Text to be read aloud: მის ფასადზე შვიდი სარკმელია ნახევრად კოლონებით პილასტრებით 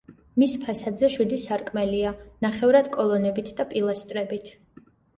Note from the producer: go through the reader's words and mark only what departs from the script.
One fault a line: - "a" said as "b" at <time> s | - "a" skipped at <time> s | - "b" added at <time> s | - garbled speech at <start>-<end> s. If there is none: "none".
- "და" added at 3.6 s